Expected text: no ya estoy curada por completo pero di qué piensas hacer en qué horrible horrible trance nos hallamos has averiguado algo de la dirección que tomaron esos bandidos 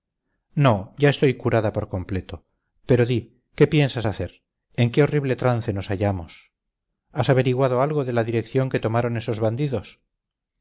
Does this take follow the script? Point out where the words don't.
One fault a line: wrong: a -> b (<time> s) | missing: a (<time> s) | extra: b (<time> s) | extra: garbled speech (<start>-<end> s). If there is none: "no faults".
missing: horrible (5.3 s)